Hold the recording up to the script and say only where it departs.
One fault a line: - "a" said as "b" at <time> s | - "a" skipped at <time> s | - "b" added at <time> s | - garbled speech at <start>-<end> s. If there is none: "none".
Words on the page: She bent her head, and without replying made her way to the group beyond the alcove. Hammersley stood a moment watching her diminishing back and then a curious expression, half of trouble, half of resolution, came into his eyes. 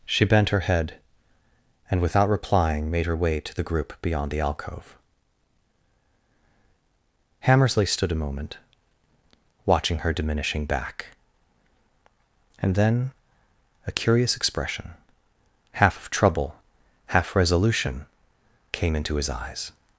- "of" skipped at 17.4 s